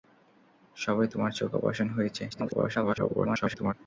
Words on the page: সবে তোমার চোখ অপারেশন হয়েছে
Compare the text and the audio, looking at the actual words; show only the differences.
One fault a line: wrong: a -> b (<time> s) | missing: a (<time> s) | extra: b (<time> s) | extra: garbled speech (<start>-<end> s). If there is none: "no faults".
extra: garbled speech (2.3-3.7 s)